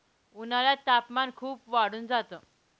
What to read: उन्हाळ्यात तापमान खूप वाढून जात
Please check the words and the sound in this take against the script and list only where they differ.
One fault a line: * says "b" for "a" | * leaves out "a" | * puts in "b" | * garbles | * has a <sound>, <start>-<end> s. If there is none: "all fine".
all fine